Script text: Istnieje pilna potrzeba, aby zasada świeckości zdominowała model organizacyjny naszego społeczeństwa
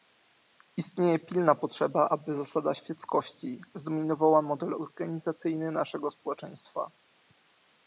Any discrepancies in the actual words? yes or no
no